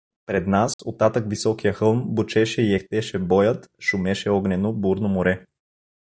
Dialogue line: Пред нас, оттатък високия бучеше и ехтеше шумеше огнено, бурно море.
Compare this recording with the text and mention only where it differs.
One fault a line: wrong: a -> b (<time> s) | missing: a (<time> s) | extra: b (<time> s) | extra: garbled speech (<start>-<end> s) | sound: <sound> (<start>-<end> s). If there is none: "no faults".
sound: dropout (0.7-0.8 s)
extra: хълм (1.7 s)
extra: боят (3.2 s)